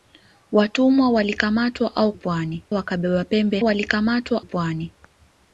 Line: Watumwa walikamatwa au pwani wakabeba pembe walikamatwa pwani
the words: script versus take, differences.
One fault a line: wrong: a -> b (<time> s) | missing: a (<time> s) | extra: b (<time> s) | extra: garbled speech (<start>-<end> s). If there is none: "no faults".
no faults